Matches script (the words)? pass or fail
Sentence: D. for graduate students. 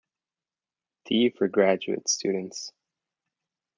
pass